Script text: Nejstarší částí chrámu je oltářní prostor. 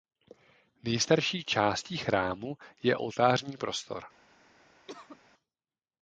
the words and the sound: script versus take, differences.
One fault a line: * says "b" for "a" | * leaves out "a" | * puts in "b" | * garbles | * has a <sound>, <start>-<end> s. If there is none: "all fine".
* has a cough, 4.9-5.2 s